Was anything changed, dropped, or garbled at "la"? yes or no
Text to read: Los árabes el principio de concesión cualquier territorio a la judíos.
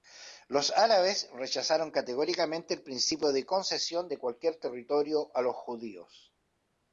yes